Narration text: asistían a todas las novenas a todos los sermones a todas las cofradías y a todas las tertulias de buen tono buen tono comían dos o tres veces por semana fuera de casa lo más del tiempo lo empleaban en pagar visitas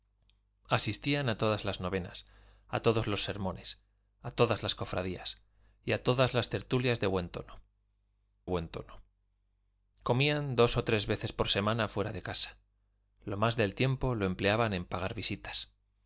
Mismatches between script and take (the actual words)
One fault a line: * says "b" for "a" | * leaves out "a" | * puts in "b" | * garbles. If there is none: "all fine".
all fine